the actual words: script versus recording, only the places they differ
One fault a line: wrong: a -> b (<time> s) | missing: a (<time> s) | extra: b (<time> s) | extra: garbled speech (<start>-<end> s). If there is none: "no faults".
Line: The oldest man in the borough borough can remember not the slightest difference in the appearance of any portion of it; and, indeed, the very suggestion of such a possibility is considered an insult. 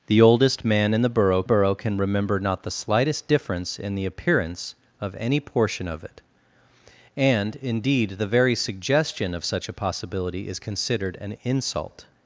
no faults